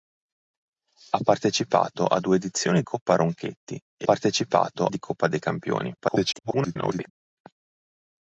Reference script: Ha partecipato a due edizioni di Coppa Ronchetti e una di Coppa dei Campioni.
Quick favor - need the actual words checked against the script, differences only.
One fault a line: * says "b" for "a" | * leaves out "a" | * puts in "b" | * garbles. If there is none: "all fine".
* leaves out "di"
* says "partecipato" for "una"
* garbles